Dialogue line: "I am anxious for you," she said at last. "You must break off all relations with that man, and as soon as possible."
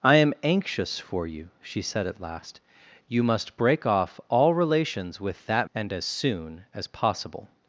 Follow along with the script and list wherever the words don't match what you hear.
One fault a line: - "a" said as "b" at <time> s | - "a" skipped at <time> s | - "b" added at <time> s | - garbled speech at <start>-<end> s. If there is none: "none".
- "man" skipped at 5.7 s